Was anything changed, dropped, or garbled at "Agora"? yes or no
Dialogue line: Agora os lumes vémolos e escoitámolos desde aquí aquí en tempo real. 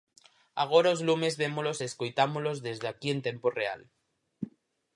no